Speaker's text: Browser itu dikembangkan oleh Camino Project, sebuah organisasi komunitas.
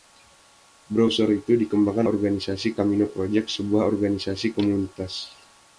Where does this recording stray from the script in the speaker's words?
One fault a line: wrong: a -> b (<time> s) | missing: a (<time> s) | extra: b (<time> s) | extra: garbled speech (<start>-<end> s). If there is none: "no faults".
wrong: oleh -> organisasi (2.1 s)